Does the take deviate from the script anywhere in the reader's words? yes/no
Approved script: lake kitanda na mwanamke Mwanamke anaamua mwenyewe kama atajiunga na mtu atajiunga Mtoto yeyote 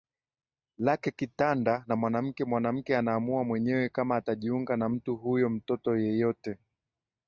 yes